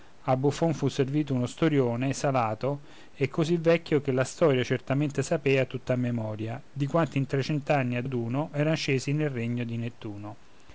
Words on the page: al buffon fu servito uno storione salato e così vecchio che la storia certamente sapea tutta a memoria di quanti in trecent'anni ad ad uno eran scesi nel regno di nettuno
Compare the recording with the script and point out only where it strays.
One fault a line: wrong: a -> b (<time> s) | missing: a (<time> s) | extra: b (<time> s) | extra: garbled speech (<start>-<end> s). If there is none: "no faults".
no faults